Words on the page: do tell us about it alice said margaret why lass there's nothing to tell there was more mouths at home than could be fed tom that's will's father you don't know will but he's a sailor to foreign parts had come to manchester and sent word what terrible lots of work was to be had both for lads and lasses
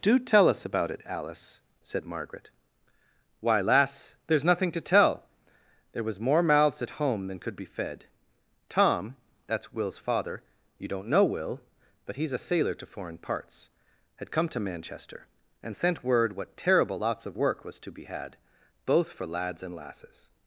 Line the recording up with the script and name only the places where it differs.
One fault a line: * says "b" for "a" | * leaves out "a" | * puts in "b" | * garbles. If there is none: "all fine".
all fine